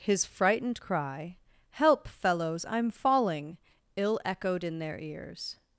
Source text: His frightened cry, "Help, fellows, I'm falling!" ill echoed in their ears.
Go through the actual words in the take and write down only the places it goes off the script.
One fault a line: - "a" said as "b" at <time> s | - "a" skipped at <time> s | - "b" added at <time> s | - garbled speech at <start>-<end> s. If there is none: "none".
none